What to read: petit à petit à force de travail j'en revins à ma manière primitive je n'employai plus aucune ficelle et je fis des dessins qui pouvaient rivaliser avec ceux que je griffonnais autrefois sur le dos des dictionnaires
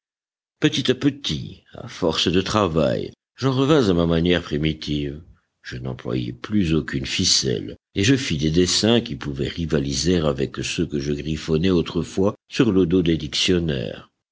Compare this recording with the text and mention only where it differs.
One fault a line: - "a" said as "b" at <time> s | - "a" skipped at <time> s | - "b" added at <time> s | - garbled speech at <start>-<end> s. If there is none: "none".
none